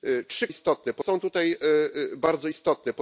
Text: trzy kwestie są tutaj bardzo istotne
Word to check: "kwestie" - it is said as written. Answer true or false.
false